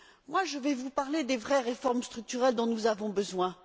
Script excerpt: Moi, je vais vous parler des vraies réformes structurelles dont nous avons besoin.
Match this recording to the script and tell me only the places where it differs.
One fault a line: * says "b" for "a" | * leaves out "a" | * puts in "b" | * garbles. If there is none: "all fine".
all fine